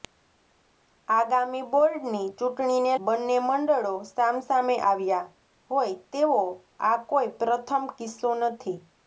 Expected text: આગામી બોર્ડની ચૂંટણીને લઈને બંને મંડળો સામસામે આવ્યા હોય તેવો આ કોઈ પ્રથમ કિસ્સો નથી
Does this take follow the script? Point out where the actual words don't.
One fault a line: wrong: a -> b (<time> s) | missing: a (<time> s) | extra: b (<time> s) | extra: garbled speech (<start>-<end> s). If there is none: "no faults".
missing: લઈને (2.9 s)